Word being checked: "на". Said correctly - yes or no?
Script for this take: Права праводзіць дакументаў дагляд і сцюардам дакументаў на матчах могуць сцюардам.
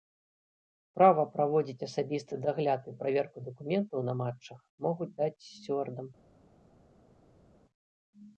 yes